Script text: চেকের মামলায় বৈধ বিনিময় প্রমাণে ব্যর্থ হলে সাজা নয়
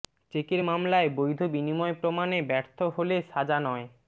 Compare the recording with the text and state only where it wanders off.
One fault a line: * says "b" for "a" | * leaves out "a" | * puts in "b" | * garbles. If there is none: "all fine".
all fine